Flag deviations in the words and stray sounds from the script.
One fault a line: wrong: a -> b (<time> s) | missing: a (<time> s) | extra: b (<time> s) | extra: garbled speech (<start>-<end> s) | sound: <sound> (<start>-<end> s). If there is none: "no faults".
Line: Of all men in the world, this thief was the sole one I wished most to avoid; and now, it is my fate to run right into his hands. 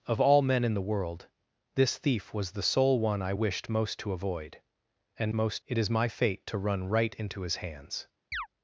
wrong: now -> most (5.3 s)
sound: chirp (8.3-8.5 s)